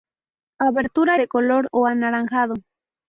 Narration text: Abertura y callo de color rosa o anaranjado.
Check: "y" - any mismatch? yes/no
yes